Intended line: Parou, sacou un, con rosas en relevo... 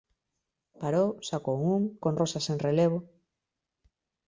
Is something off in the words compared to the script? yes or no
no